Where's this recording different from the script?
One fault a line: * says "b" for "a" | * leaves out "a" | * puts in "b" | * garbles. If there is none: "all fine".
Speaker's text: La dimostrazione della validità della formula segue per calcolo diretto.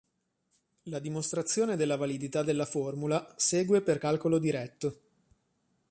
all fine